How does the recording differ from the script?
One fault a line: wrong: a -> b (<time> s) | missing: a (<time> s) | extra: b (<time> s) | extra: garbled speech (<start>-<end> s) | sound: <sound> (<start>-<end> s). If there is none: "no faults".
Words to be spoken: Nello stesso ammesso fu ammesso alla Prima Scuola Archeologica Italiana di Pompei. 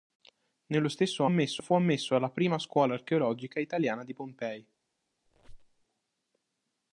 sound: squeak (5.3-5.9 s)